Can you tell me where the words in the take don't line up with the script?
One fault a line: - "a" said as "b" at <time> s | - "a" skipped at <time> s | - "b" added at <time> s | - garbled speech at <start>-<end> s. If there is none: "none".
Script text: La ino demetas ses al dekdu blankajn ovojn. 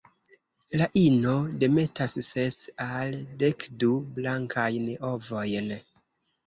none